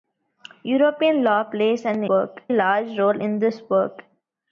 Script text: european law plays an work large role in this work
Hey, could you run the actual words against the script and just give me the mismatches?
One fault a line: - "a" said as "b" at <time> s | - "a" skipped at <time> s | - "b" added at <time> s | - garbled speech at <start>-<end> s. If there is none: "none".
none